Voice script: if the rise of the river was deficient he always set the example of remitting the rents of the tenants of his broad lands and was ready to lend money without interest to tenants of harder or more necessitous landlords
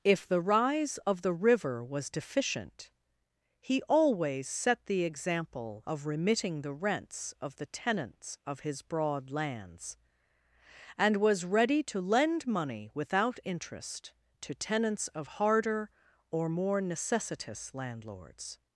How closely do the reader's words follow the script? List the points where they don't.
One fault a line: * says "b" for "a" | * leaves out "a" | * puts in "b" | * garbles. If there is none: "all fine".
all fine